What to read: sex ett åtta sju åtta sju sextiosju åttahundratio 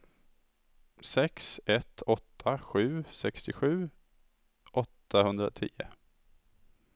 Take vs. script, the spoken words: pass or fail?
fail